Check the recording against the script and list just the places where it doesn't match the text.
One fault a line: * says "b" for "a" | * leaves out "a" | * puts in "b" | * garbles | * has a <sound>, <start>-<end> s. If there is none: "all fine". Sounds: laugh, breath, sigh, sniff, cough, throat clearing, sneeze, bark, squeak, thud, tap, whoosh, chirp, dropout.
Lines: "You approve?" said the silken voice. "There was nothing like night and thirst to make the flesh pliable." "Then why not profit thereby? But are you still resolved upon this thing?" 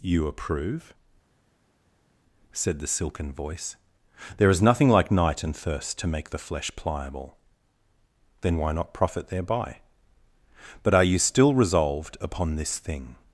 * says "is" for "was"